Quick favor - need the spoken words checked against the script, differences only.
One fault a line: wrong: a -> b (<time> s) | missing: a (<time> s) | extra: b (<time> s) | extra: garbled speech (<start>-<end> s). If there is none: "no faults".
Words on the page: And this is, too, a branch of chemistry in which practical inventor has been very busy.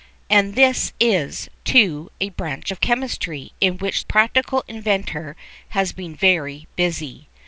no faults